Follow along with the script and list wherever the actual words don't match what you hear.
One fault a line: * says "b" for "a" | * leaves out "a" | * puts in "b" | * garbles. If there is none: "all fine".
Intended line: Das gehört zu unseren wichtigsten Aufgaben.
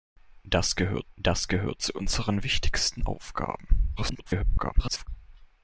* puts in "das gehört"
* garbles